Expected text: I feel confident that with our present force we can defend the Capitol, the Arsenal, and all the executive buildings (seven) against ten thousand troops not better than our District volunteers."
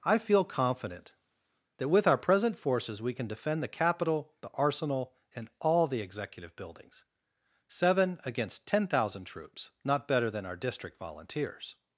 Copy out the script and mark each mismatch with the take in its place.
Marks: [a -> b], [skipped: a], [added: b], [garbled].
I feel confident that with our present [force -> forces] we can defend the Capitol, the Arsenal, and all the executive buildings (seven) against ten thousand troops not better than our District volunteers."